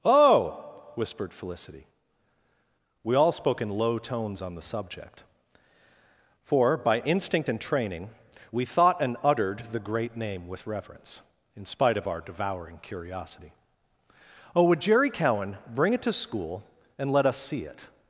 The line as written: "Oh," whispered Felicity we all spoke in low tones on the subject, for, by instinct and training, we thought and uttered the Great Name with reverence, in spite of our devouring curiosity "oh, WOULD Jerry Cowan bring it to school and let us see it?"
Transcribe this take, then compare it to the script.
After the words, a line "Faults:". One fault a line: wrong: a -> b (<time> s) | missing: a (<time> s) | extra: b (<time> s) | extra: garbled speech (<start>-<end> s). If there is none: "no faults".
"Oh," whispered Felicity we all spoke in low tones on the subject, for, by instinct and training, we thought and uttered the Great Name with reverence, in spite of our devouring curiosity "oh, WOULD Jerry Cowan bring it to school and let us see it?"
Faults:
no faults